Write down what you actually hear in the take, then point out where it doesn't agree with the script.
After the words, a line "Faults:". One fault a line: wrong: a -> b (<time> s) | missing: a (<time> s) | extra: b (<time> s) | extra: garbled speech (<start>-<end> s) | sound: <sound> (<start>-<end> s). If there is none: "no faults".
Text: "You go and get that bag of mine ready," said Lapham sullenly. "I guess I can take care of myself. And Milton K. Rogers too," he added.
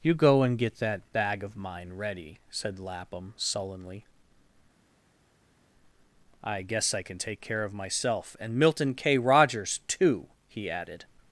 "You go and get that bag of mine ready," said Lapham sullenly. "I guess I can take care of myself. And Milton K. Rogers too," he added.
Faults:
no faults